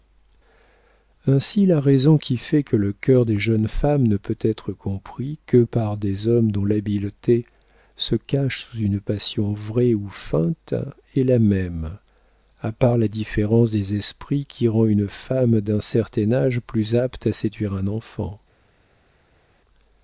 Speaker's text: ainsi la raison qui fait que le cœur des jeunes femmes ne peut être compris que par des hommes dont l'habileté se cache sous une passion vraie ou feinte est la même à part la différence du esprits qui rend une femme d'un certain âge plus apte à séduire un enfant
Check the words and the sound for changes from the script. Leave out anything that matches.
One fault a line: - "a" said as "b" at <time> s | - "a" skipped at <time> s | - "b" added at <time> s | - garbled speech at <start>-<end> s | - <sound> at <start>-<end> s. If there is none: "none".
- "du" said as "des" at 13.7 s